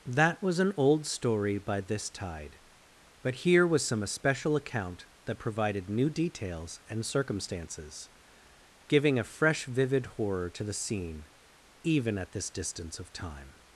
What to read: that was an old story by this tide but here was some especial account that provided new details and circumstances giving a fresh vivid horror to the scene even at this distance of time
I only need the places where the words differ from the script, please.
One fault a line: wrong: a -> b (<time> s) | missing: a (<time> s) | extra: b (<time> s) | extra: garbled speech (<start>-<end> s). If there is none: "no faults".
no faults